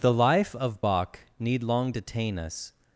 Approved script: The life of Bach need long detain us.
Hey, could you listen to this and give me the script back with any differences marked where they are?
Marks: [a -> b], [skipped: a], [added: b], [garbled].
The life of Bach need long detain us.